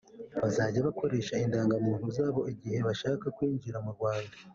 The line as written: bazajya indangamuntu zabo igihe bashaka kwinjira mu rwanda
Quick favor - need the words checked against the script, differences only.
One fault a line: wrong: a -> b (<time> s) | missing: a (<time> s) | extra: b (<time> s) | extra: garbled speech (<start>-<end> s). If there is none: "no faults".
extra: bakoresha (0.8 s)